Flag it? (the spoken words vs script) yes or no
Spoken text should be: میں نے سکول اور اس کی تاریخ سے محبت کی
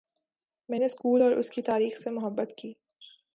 no